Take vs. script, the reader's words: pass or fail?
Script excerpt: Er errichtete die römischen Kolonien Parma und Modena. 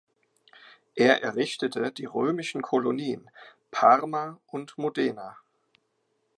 pass